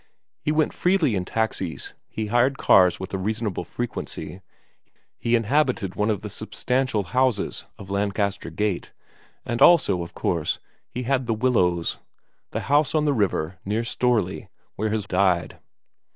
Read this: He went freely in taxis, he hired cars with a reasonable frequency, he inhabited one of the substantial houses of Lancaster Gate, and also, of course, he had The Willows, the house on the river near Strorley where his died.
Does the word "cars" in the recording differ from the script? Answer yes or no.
no